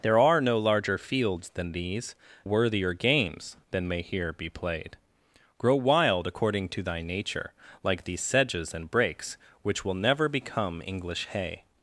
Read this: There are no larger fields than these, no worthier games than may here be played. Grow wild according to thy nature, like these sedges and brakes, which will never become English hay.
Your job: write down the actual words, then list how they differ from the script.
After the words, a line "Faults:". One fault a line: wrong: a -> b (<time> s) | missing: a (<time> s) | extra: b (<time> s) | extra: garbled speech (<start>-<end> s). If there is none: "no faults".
There are no larger fields than these, worthier games than may here be played. Grow wild according to thy nature, like these sedges and brakes, which will never become English hay.
Faults:
missing: no (2.1 s)